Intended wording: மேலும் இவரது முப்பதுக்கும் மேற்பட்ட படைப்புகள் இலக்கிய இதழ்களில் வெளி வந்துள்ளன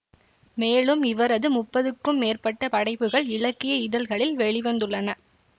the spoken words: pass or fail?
pass